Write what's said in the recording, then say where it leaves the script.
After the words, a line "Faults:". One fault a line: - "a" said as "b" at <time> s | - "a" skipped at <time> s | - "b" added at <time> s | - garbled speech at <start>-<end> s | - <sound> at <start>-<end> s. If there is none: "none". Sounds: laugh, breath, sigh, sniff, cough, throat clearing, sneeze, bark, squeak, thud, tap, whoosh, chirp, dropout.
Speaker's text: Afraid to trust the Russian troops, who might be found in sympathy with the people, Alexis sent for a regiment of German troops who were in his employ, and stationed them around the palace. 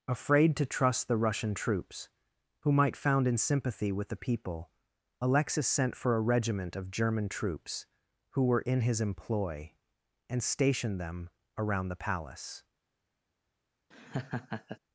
Afraid to trust the Russian troops, who might found in sympathy with the people, Alexis sent for a regiment of German troops who were in his employ, and stationed them around the palace.
Faults:
- "be" skipped at 3.0 s
- laugh at 13.9-14.8 s